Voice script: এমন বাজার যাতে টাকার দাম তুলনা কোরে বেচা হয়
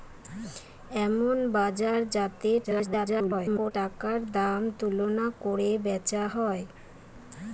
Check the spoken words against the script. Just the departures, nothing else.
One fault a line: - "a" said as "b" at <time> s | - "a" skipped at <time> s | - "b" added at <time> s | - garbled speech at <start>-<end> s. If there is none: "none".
- garbled speech at 2.6-3.7 s